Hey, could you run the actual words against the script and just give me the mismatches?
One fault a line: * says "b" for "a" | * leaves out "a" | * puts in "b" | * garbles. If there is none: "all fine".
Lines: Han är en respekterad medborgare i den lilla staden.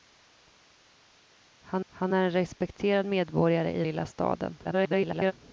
* puts in "han"
* leaves out "den"
* garbles